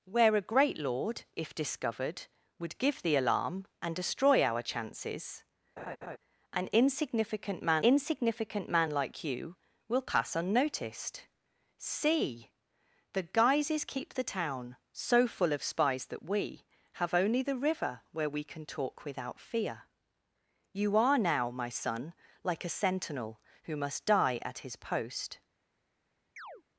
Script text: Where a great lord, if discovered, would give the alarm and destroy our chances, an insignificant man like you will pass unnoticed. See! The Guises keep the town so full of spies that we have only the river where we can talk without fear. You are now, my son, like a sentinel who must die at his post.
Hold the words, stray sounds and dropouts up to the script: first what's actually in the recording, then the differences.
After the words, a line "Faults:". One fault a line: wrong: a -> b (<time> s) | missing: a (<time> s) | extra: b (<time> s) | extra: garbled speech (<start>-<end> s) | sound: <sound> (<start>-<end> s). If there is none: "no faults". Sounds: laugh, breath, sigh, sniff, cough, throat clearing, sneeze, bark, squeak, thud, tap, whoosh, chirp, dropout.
Where a great lord, if discovered, would give the alarm and destroy our chances, an insignificant man insignificant man like you will pass unnoticed. See! The Guises keep the town so full of spies that we have only the river where we can talk without fear. You are now, my son, like a sentinel who must die at his post.
Faults:
sound: laugh (5.8-6.2 s)
extra: insignificant man (7.8 s)
sound: chirp (26.4-26.6 s)